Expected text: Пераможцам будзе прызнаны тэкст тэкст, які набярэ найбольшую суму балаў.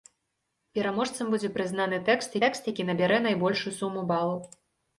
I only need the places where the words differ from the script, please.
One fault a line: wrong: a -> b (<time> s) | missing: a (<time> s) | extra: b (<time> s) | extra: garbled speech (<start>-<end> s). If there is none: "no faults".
no faults